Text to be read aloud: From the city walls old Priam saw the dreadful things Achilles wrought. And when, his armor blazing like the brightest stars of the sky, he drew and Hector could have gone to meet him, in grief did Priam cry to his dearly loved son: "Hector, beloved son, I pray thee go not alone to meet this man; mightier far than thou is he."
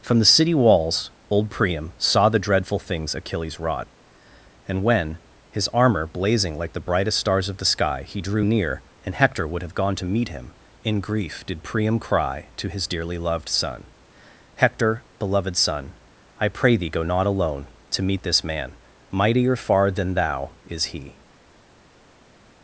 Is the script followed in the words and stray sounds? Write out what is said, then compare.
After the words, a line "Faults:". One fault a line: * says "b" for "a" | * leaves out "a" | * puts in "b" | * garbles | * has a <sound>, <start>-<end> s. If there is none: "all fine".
From the city walls old Priam saw the dreadful things Achilles wrought. And when, his armor blazing like the brightest stars of the sky, he drew near, and Hector would have gone to meet him, in grief did Priam cry to his dearly loved son: "Hector, beloved son, I pray thee go not alone to meet this man; mightier far than thou is he."
Faults:
* puts in "near"
* says "would" for "could"